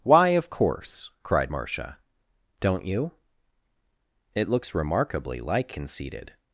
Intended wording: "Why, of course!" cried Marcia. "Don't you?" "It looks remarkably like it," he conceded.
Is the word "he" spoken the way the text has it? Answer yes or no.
no